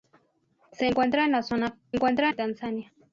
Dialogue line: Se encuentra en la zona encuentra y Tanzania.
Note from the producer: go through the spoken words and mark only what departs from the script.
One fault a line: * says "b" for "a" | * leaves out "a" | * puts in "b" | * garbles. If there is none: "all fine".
all fine